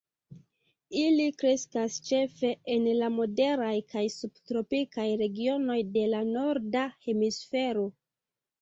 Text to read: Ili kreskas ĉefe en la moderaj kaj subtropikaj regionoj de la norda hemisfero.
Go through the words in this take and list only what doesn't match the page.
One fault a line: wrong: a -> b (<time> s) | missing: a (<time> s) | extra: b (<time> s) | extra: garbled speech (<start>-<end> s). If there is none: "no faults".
no faults